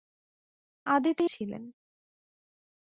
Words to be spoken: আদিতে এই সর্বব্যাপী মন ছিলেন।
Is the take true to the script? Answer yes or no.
no